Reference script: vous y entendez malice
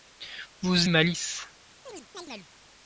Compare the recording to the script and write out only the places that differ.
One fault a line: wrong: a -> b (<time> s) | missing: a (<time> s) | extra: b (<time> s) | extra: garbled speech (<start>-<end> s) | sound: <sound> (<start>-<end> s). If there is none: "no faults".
missing: y entendez (0.9 s)
sound: chirp (1.9-2.5 s)